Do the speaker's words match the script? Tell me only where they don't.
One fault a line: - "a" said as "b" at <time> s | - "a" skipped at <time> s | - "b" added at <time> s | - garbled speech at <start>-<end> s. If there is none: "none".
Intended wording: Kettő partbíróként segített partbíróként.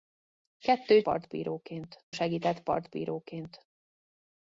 none